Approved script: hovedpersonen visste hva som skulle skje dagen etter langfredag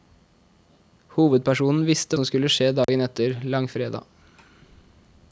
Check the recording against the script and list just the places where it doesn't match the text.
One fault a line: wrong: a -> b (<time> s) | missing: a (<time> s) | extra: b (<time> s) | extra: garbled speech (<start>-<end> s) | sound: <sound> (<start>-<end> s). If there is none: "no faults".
missing: hva (2.2 s)
sound: dropout (2.8-2.9 s)